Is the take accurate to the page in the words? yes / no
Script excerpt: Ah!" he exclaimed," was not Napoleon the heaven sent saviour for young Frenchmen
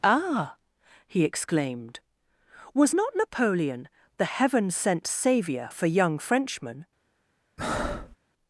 yes